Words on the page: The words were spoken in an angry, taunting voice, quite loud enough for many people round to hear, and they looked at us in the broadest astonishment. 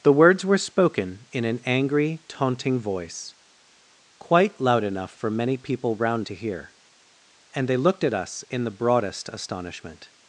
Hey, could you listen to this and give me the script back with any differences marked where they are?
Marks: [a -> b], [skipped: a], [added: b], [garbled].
The words were spoken in an angry, taunting voice, quite loud enough for many people round to hear, and they looked at us in the broadest astonishment.